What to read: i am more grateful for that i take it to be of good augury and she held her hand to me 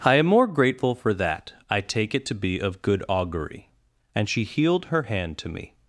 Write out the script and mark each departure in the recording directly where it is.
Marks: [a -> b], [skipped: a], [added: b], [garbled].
i am more grateful for that i take it to be of good augury and she [held -> healed] her hand to me